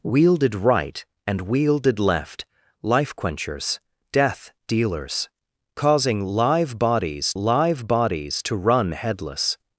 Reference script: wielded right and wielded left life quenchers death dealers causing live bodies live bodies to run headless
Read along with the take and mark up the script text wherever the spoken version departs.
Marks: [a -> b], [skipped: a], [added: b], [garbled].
wielded right and wielded left life quenchers death dealers causing live bodies live bodies to run headless